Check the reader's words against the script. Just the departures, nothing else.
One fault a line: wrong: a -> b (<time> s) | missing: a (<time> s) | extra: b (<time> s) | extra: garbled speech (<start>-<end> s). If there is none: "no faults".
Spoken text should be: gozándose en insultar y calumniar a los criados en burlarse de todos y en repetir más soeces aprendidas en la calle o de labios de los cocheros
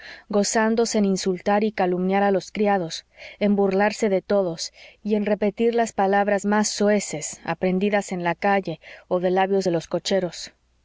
extra: las palabras (5.8 s)